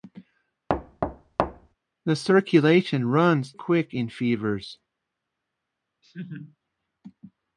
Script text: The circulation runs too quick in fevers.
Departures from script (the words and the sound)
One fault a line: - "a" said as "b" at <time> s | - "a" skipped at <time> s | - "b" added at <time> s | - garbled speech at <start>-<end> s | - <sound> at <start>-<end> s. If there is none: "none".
- thud at 0.7-1.7 s
- "too" skipped at 3.5 s
- laugh at 6.0-6.6 s